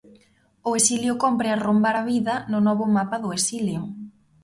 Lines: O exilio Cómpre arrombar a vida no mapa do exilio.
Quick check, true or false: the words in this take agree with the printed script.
false